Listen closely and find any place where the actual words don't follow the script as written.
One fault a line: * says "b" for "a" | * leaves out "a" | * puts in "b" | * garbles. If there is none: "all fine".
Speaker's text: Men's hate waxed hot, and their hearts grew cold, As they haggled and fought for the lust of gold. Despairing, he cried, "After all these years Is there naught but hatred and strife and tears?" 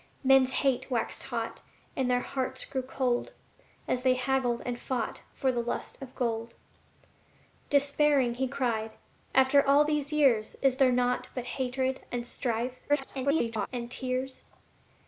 * garbles